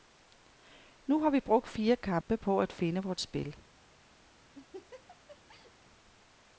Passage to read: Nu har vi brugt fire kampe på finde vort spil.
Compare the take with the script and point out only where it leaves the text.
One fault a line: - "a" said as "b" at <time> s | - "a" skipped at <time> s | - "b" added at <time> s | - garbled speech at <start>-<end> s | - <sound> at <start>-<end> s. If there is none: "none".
- dropout at 2.2-2.3 s
- "at" added at 2.6 s
- laugh at 4.5-5.7 s